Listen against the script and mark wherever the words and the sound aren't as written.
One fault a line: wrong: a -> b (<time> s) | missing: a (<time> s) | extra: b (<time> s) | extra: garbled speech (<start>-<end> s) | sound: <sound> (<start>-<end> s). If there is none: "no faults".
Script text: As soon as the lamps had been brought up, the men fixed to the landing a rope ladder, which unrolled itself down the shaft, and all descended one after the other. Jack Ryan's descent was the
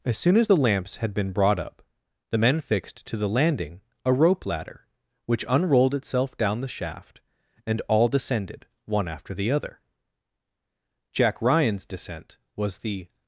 no faults